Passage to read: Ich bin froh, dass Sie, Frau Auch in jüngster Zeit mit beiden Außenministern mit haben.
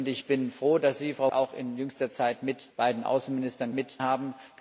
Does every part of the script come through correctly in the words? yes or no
yes